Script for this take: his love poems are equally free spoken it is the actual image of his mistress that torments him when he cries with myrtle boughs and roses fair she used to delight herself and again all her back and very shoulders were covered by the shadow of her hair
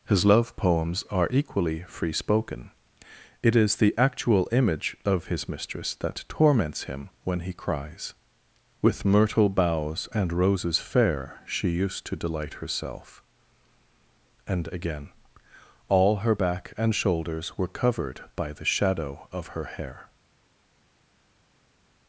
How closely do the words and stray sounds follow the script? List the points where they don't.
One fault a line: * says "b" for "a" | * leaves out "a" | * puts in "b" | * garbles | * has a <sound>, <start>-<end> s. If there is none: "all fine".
* leaves out "very"